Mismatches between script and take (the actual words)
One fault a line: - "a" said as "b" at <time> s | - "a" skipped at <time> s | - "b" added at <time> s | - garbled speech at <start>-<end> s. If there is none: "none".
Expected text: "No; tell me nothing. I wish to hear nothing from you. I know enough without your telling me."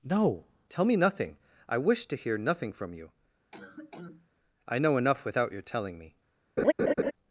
none